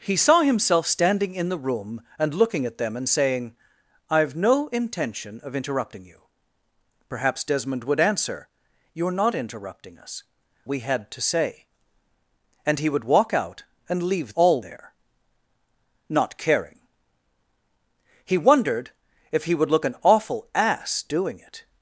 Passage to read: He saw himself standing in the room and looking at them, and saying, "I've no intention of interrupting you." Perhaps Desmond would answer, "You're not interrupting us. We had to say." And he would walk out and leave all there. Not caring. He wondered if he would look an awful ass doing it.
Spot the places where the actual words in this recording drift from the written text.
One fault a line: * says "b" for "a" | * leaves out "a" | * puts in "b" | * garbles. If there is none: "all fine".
all fine